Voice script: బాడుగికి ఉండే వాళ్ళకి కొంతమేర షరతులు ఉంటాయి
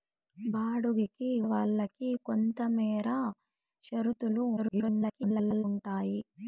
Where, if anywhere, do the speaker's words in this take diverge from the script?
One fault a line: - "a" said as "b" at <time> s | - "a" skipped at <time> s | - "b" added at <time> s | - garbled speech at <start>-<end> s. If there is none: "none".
- "ఉండే" skipped at 1.3 s
- garbled speech at 4.6-5.6 s